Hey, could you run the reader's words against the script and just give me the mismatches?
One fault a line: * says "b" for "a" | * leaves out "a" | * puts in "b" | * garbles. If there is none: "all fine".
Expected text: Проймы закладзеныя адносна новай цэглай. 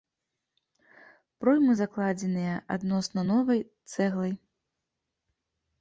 all fine